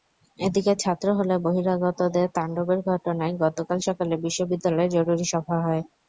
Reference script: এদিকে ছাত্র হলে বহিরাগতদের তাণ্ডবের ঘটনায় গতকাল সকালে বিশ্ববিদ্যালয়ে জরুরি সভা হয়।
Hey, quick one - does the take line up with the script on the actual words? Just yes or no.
yes